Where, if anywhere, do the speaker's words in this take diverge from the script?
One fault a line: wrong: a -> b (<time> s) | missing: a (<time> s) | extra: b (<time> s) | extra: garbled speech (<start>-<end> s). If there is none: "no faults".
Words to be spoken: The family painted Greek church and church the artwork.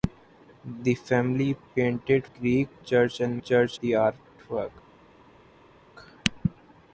no faults